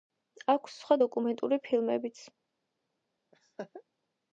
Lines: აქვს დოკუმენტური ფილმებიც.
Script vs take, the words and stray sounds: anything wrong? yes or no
yes